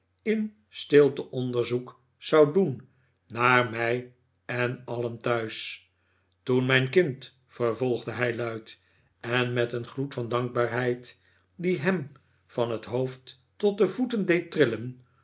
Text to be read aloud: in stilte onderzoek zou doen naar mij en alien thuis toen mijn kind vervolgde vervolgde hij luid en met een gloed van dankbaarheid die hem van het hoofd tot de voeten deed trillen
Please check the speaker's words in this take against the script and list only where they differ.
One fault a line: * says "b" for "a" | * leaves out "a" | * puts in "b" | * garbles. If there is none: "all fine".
* leaves out "vervolgde"